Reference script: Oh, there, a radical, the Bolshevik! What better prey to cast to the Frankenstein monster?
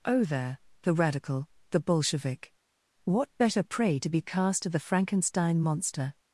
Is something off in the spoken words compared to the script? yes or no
yes